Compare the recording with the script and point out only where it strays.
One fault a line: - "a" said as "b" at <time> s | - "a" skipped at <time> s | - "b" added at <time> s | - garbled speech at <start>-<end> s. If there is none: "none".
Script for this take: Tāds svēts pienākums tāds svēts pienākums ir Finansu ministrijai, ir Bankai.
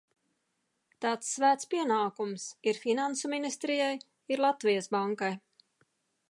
- "tāds svēts pienākums" skipped at 2.5 s
- "Latvijas" added at 4.5 s